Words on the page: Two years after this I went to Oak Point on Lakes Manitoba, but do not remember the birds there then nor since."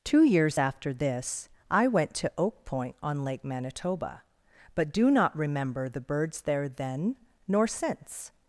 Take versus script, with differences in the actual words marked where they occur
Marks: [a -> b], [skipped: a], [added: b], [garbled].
Two years after this I went to Oak Point on [Lakes -> Lake] Manitoba, but do not remember the birds there then nor since."